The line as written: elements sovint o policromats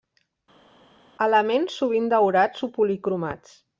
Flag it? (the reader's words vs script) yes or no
yes